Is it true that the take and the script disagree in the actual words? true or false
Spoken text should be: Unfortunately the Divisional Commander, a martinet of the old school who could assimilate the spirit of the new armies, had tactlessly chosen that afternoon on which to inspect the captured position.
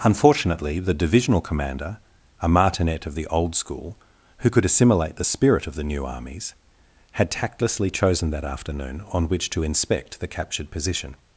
false